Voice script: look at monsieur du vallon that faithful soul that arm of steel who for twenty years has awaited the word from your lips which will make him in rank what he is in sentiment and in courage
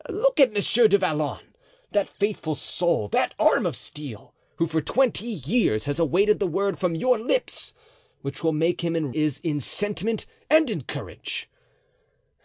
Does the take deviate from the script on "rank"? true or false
true